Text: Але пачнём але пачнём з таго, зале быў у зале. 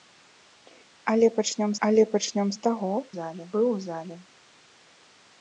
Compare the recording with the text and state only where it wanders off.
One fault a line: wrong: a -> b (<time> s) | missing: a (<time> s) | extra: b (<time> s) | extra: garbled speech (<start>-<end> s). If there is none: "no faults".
no faults